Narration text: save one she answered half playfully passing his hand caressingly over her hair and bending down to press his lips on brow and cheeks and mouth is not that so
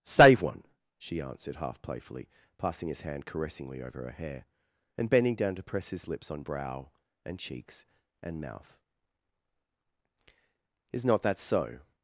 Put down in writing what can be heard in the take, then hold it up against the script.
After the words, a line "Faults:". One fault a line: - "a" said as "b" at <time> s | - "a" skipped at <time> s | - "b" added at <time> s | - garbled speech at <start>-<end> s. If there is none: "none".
save one she answered half playfully passing his hand caressingly over her hair and bending down to press his lips on brow and cheeks and mouth is not that so
Faults:
none